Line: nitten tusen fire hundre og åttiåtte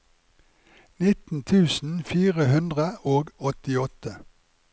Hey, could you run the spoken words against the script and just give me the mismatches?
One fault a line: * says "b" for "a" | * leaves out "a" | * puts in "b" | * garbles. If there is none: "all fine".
all fine